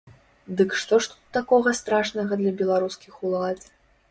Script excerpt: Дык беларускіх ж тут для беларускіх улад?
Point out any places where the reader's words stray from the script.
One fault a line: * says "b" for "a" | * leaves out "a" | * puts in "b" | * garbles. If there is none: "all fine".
* says "што" for "беларускіх"
* puts in "такога страшнага"